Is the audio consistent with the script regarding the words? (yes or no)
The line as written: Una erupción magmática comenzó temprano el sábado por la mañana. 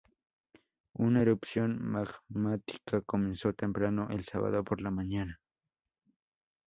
yes